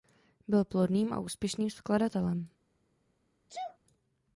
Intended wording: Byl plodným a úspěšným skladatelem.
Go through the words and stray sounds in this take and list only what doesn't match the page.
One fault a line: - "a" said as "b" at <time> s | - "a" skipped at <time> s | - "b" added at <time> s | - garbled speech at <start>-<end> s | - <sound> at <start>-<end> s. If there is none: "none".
- sneeze at 3.5-3.8 s